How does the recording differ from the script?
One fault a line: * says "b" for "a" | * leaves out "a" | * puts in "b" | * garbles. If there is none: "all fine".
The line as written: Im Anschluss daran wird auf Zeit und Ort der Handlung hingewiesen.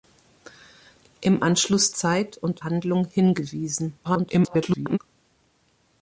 * leaves out "daran wird auf"
* leaves out "Ort der"
* garbles